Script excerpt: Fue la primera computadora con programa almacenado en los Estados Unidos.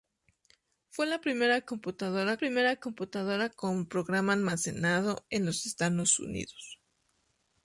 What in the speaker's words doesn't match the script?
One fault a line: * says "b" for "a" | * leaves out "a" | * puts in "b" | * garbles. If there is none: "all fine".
* puts in "primera computadora"